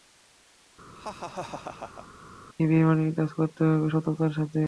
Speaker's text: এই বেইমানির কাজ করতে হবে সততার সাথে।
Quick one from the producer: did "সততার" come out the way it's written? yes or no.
yes